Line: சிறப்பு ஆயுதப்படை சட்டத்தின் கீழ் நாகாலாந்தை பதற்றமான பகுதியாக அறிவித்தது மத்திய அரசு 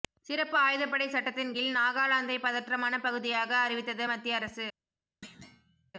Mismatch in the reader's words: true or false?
false